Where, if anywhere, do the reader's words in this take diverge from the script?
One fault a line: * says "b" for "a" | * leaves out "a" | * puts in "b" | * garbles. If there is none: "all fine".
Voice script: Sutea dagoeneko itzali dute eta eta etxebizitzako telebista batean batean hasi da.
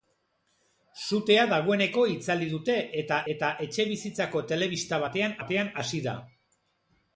all fine